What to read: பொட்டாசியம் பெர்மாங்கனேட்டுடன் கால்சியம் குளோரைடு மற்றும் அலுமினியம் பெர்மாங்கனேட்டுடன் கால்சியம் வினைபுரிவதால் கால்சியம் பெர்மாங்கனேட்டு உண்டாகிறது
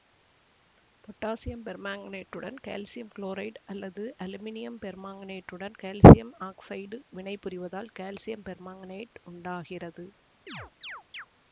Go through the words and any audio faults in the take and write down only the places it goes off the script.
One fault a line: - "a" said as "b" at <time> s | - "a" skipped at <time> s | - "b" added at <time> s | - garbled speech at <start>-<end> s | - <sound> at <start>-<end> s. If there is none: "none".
- "மற்றும்" said as "அல்லது" at 3.6 s
- "ஆக்சைடு" added at 6.5 s
- chirp at 10.5-11.3 s